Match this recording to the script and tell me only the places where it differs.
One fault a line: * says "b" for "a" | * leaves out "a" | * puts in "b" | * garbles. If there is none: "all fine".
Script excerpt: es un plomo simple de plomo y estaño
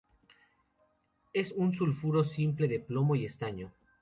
* says "sulfuro" for "plomo"